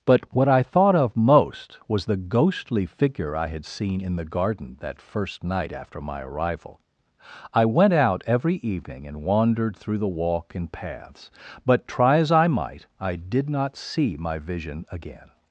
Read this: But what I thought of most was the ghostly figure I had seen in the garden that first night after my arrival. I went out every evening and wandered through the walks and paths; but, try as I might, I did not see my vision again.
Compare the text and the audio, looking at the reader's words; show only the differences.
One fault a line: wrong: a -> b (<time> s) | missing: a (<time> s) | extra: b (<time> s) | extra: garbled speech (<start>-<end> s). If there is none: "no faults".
wrong: walks -> walk (10.1 s)